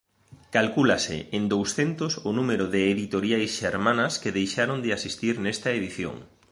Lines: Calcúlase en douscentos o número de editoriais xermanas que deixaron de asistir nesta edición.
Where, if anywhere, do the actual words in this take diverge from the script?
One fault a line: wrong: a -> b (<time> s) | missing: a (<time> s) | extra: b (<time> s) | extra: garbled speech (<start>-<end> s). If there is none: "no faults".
no faults